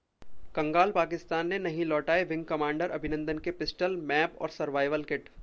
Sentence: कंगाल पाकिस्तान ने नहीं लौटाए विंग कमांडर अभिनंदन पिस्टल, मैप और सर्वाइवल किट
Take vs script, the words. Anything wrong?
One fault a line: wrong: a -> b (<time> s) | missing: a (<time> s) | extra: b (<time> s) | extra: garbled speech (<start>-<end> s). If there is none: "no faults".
extra: के (3.4 s)